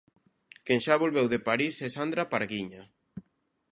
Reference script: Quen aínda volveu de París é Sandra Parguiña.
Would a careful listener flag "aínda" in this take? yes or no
yes